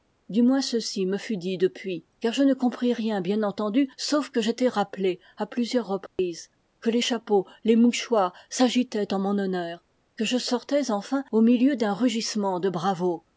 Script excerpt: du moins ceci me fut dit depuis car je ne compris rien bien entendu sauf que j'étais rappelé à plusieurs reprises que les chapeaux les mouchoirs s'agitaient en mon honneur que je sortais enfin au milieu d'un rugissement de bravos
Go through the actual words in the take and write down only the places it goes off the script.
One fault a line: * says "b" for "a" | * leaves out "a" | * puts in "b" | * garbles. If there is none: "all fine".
all fine